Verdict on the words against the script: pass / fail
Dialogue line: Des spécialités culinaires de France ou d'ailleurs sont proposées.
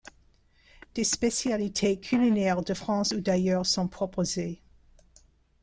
pass